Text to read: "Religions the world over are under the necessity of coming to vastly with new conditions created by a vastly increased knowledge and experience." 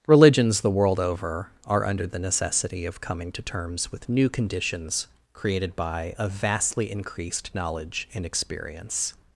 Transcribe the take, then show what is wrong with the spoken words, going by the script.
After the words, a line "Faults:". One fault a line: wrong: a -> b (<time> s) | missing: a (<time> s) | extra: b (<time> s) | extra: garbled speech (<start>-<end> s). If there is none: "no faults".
"Religions the world over are under the necessity of coming to terms with new conditions created by a vastly increased knowledge and experience."
Faults:
wrong: vastly -> terms (3.4 s)